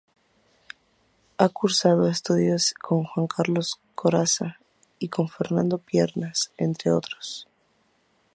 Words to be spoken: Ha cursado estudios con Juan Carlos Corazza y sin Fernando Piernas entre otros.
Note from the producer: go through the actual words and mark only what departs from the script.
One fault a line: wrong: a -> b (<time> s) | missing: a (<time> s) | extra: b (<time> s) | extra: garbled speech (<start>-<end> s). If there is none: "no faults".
wrong: sin -> con (5.1 s)